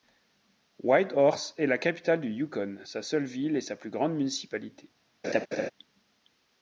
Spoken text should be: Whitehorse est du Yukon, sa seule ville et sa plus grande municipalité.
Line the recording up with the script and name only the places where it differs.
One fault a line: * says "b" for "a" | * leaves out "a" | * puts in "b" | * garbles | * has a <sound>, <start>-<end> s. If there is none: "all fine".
* puts in "la capitale"
* has a laugh, 5.2-5.7 s